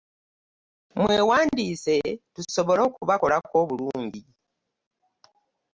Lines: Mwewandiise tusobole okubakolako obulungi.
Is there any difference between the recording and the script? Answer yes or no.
no